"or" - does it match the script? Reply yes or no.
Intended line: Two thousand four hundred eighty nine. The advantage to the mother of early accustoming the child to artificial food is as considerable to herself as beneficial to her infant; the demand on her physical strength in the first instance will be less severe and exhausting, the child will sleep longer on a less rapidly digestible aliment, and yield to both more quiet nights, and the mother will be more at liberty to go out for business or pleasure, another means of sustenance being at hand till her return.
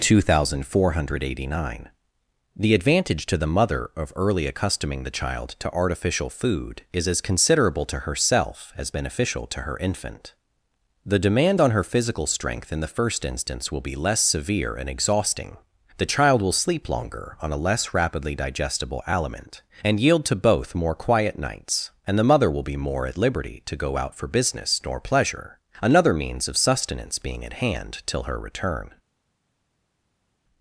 no